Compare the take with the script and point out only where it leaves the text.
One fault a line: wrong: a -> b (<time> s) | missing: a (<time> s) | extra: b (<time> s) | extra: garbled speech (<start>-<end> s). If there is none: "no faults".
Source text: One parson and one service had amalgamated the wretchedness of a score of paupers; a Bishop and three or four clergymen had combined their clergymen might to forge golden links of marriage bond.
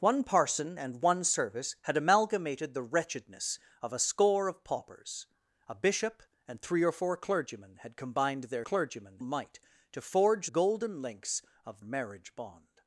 no faults